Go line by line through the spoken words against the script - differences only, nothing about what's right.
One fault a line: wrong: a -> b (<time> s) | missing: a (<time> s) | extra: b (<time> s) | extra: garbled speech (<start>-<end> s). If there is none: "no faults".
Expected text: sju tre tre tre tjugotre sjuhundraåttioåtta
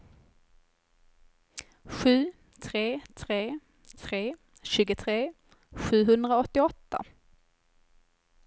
no faults